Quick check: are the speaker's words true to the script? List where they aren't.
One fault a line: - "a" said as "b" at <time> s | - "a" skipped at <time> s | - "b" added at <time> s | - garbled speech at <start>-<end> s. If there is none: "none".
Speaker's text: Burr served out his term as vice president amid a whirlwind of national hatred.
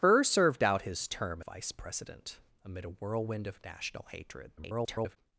- "as" skipped at 1.4 s
- garbled speech at 4.6-5.2 s